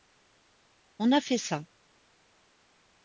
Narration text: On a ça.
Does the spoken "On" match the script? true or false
true